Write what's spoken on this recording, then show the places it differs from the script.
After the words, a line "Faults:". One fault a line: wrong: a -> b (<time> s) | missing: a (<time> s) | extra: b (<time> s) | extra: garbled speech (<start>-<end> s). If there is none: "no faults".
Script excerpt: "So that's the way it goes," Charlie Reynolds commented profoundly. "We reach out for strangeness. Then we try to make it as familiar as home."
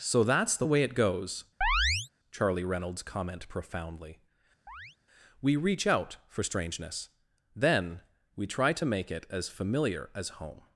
"So that's the way it goes," Charlie Reynolds comment profoundly. "We reach out for strangeness. Then we try to make it as familiar as home."
Faults:
wrong: commented -> comment (3.0 s)